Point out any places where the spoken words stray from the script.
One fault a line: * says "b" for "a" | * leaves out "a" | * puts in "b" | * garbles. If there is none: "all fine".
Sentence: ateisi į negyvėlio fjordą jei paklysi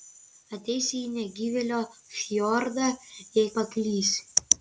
all fine